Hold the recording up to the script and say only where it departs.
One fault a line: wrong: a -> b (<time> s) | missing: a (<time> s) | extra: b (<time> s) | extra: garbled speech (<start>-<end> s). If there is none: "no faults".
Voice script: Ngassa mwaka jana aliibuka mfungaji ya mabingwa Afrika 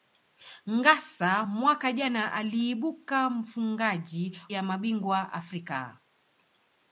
no faults